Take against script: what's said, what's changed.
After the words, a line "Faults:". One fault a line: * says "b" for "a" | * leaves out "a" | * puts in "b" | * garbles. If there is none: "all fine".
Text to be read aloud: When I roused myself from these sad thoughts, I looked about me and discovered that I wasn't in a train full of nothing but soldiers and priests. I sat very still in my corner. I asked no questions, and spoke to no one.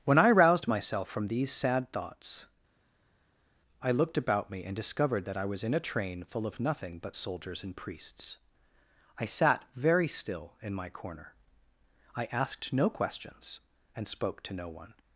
When I roused myself from these sad thoughts, I looked about me and discovered that I was in a train full of nothing but soldiers and priests. I sat very still in my corner. I asked no questions, and spoke to no one.
Faults:
* says "was" for "wasn't"